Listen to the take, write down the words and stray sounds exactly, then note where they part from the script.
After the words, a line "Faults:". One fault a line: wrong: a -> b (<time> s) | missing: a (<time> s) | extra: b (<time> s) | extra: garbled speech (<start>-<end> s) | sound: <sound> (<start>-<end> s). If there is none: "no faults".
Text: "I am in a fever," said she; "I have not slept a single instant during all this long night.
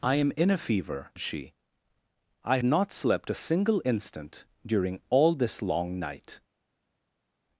"I am in a fever," she; "I not slept a single instant during all this long night.
Faults:
missing: said (1.1 s)
missing: have (2.6 s)